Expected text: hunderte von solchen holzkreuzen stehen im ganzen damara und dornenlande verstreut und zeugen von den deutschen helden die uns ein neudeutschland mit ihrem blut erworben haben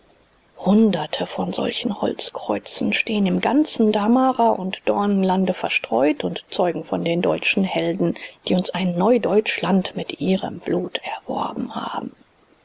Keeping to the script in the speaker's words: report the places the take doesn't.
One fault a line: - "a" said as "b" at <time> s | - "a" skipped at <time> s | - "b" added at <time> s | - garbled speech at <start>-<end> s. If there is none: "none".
none